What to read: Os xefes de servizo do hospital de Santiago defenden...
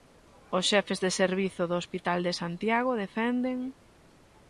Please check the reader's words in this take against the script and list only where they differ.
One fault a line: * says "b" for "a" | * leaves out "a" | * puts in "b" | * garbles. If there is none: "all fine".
all fine